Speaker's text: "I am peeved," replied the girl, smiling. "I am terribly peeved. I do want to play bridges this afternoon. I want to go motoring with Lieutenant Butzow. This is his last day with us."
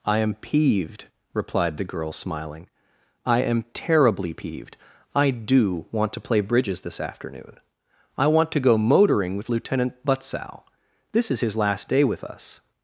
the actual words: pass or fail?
pass